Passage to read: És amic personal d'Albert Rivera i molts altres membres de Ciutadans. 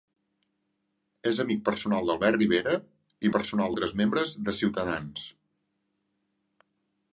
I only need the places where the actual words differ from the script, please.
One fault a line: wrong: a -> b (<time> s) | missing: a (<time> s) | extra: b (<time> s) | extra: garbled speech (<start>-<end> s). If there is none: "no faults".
wrong: molts -> personal (3.3 s)